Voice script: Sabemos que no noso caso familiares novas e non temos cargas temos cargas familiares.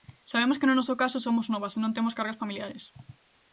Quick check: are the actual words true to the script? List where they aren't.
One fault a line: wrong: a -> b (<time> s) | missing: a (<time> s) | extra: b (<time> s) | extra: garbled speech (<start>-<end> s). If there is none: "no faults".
wrong: familiares -> somos (1.2 s)
missing: temos cargas (2.4 s)